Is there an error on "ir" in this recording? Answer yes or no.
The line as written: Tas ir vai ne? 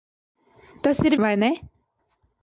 no